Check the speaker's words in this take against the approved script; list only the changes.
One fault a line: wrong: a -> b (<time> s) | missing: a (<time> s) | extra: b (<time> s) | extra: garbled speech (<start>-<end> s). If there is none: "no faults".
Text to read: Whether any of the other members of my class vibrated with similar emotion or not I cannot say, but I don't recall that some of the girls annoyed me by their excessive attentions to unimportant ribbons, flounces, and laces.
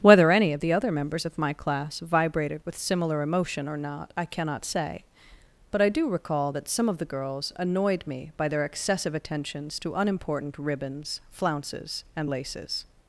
wrong: don't -> do (5.9 s)